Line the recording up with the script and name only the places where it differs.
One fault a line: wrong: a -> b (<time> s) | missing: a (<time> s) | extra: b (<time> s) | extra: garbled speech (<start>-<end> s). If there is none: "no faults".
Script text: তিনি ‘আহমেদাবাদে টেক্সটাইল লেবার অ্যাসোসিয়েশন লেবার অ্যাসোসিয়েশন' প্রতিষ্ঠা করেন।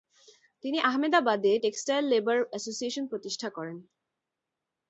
missing: লেবার অ্যাসোসিয়েশন (3.1 s)